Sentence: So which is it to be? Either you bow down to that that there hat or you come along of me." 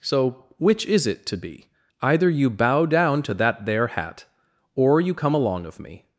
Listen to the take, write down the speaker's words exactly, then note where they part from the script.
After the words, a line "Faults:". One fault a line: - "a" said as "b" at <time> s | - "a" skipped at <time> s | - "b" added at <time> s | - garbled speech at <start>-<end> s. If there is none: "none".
So which is it to be? Either you bow down to that there hat or you come along of me."
Faults:
- "that" skipped at 3.6 s